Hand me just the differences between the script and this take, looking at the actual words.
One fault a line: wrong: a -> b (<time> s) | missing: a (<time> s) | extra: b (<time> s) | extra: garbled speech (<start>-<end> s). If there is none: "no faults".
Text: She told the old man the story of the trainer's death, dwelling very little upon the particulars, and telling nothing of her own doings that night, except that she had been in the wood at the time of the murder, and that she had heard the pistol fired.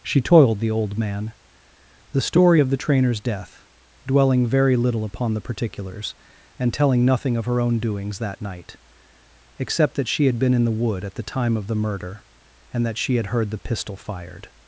wrong: told -> toiled (0.2 s)